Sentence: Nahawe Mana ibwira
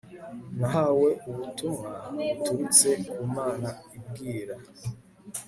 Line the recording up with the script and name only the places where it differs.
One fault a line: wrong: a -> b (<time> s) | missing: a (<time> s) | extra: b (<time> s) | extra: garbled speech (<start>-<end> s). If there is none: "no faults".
extra: ubutumwa buturutse ku (1.3 s)